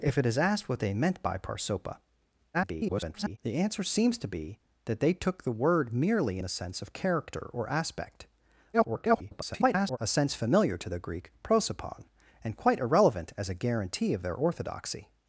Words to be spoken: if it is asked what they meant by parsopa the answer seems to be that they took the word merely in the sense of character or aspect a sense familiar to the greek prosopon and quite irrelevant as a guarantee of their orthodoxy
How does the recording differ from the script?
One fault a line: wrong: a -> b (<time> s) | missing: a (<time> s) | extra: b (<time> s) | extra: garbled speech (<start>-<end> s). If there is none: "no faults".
extra: garbled speech (2.5-3.4 s)
missing: in (6.4 s)
extra: garbled speech (8.7-10.0 s)